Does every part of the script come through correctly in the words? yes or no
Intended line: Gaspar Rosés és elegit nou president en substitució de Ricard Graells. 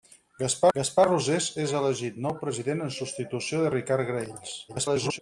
no